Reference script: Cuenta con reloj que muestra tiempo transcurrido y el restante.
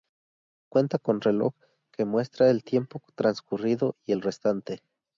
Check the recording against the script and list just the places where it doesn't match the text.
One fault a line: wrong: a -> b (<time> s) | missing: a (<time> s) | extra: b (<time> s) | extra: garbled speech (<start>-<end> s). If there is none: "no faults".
extra: el (2.5 s)